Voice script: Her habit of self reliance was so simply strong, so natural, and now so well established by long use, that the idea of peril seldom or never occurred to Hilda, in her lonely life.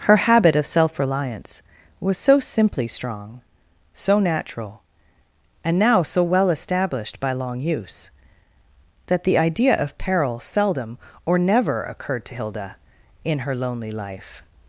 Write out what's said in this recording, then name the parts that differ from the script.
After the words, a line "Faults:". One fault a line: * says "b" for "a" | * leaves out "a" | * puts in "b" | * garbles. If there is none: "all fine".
Her habit of self reliance was so simply strong, so natural, and now so well established by long use, that the idea of peril seldom or never occurred to Hilda, in her lonely life.
Faults:
all fine